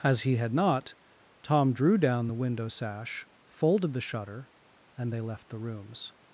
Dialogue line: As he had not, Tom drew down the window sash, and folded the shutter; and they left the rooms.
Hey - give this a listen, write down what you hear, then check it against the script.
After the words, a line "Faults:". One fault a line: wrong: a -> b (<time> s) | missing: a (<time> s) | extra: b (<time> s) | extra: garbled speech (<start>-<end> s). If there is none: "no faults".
As he had not, Tom drew down the window sash, folded the shutter; and they left the rooms.
Faults:
missing: and (3.3 s)